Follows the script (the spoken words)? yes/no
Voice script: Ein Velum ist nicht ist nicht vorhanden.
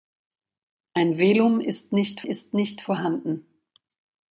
yes